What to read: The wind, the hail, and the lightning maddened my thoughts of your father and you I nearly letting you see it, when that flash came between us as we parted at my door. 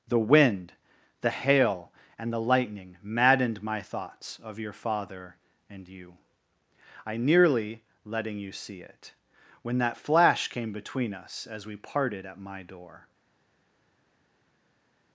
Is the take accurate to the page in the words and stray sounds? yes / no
yes